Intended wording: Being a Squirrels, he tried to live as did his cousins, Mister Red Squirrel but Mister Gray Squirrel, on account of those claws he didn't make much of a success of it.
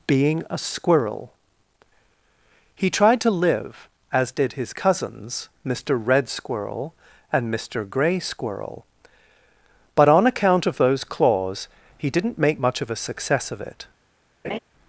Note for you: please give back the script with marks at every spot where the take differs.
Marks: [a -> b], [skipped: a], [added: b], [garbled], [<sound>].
Being a [Squirrels, -> Squirrel] he tried to live as did his cousins, Mister Red Squirrel [but -> and] Mister Gray Squirrel, [added: but] on account of those claws he didn't make much of a success of it. [laugh]